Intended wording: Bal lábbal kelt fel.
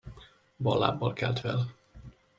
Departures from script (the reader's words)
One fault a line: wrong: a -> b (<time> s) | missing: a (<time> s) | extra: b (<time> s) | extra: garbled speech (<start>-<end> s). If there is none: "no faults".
no faults